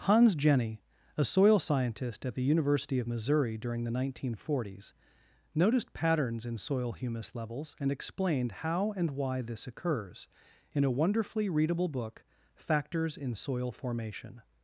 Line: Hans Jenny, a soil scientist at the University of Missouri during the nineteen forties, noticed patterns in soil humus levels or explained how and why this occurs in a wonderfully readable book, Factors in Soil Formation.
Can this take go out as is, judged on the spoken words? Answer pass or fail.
fail